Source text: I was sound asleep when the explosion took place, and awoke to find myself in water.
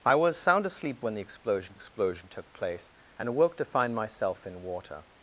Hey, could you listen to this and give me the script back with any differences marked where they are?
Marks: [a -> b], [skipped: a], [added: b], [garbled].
I was sound asleep when the explosion [added: explosion] took place, and awoke to find myself in water.